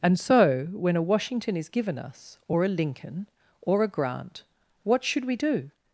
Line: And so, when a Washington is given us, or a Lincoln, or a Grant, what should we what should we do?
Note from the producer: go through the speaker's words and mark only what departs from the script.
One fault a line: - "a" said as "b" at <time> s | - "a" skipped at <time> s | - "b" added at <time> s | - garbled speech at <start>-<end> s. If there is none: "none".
- "what should we" skipped at 5.4 s